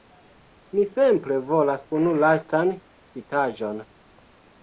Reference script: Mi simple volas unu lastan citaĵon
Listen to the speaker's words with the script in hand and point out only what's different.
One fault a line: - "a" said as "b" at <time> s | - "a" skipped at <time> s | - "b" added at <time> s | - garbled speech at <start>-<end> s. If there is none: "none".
none